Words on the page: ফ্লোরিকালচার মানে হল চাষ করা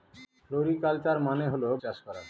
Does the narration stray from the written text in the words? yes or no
no